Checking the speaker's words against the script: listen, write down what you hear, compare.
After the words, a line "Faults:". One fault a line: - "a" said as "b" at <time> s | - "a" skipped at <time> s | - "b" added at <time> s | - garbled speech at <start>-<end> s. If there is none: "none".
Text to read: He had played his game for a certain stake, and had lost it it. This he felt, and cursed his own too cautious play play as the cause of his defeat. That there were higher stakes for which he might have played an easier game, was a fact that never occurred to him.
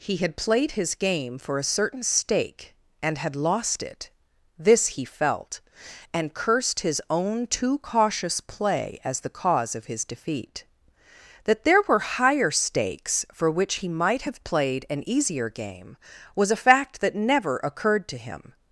He had played his game for a certain stake, and had lost it. This he felt, and cursed his own too cautious play as the cause of his defeat. That there were higher stakes for which he might have played an easier game, was a fact that never occurred to him.
Faults:
- "it" skipped at 4.1 s
- "play" skipped at 9.0 s